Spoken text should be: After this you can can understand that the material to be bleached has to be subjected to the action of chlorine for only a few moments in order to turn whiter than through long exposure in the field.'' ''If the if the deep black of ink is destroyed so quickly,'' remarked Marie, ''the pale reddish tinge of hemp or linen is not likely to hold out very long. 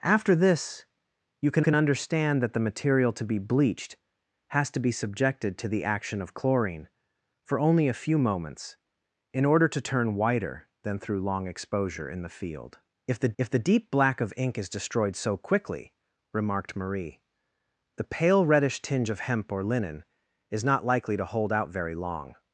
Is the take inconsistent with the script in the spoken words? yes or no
no